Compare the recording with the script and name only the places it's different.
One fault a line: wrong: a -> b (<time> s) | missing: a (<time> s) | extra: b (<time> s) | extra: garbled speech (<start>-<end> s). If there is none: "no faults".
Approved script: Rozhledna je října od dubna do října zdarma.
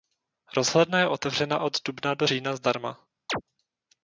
wrong: října -> otevřena (1.1 s)